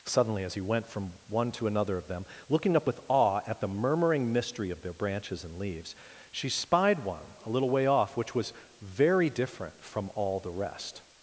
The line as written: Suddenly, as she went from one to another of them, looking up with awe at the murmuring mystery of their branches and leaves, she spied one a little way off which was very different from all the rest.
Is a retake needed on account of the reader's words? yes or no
yes